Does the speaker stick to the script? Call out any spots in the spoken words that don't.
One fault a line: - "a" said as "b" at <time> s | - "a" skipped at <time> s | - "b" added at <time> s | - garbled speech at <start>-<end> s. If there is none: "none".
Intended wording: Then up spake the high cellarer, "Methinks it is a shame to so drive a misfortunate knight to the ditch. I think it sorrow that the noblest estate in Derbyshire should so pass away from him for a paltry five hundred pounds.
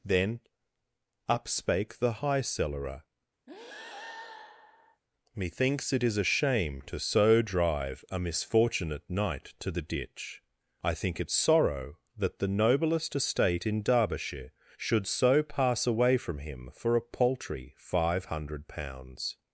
none